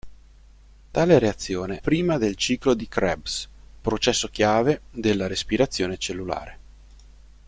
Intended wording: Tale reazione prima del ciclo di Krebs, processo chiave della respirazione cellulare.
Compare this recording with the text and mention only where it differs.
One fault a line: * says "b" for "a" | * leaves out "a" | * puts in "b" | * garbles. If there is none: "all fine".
all fine